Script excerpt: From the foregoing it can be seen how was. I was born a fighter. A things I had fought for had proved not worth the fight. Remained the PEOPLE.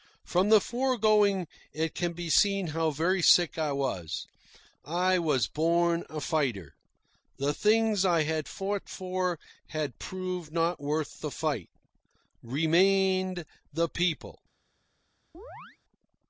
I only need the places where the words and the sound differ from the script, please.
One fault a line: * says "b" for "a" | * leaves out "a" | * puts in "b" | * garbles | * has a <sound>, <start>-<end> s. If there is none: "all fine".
* puts in "very sick I"
* says "The" for "A"
* has a chirp, 15.3-15.8 s